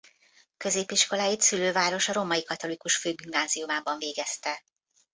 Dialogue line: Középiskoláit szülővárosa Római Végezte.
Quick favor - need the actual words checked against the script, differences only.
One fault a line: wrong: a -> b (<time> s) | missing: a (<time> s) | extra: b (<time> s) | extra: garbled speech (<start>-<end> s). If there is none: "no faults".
extra: Katolikus Főgimnáziumában (2.4 s)